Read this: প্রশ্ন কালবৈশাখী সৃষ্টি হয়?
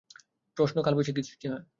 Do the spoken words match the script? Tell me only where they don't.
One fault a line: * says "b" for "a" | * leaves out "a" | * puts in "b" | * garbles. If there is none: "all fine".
all fine